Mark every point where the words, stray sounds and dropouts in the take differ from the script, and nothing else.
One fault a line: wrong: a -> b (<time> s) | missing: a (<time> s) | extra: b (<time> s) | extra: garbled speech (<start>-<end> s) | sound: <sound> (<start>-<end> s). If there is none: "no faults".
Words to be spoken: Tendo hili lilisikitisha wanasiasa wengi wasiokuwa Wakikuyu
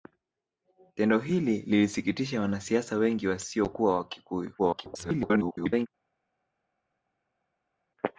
extra: garbled speech (4.6-5.9 s)